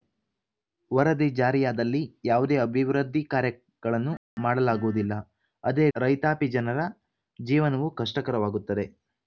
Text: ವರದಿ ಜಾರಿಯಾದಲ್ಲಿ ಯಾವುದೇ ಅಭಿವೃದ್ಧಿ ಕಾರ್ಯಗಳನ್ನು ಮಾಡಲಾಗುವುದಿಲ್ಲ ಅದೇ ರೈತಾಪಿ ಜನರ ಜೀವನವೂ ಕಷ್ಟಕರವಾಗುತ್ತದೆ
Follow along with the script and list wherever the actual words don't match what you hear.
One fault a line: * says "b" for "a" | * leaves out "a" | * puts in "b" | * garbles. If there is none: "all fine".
all fine